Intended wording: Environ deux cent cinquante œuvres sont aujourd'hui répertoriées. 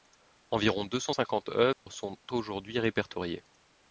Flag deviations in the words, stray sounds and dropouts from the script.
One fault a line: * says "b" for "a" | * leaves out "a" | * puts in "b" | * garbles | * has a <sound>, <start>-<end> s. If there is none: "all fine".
* has a dropout, 1.7-1.9 s